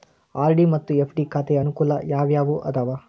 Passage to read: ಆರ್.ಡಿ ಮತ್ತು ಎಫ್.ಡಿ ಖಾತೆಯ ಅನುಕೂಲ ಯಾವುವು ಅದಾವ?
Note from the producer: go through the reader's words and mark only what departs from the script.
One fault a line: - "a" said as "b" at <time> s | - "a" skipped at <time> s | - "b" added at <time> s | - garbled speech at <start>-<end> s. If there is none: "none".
none